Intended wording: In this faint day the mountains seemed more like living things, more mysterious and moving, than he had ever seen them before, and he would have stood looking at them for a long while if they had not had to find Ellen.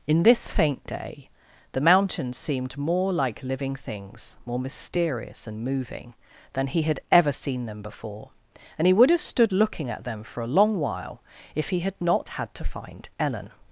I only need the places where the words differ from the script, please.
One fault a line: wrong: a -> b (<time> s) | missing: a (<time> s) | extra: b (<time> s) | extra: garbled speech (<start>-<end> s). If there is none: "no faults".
wrong: they -> he (11.7 s)